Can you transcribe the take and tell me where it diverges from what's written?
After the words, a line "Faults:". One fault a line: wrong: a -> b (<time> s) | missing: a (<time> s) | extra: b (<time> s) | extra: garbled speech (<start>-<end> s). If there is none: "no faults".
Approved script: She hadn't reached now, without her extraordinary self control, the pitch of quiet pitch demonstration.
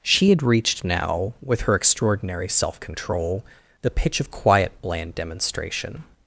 She had reached now, with her extraordinary self control, the pitch of quiet bland demonstration.
Faults:
wrong: hadn't -> had (0.3 s)
wrong: without -> with (1.4 s)
wrong: pitch -> bland (4.8 s)